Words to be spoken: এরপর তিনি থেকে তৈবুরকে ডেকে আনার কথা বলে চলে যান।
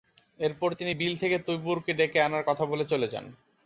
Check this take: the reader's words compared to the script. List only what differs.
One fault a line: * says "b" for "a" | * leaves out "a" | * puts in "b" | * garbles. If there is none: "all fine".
* puts in "বিল"